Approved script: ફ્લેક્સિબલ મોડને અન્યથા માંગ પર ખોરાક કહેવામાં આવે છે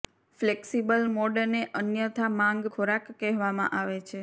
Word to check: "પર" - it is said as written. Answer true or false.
false